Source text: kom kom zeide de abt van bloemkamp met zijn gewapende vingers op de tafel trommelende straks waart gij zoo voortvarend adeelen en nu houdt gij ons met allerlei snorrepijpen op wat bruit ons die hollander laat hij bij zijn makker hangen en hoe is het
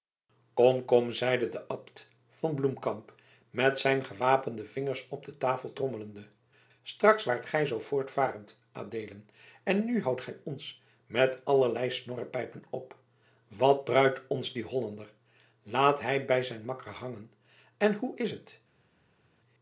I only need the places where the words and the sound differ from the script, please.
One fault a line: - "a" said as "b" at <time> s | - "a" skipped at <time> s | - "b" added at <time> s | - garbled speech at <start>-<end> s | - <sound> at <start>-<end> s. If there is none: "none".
none